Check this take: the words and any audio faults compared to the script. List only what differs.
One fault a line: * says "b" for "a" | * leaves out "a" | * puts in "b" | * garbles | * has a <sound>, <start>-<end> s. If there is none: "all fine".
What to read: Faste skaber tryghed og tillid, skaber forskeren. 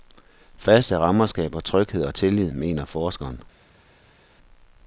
* puts in "rammer"
* says "mener" for "skaber"